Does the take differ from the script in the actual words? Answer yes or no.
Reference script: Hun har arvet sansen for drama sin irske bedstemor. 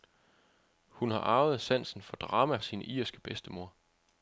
no